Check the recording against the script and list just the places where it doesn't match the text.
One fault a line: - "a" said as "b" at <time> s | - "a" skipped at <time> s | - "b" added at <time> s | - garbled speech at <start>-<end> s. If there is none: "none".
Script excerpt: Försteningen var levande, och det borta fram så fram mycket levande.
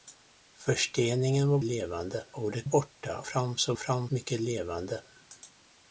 none